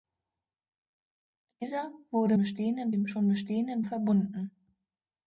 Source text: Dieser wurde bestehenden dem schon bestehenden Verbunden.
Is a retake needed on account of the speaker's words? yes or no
no